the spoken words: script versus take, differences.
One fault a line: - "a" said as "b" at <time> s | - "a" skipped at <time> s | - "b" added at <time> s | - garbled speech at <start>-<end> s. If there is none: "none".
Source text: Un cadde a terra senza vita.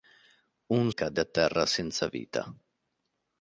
none